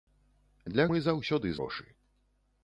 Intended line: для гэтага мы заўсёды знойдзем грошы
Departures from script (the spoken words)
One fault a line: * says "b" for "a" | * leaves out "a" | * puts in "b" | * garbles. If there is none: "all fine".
* leaves out "гэтага"
* leaves out "знойдзем"